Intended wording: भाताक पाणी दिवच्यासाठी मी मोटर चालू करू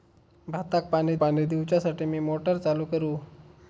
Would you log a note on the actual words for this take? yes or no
yes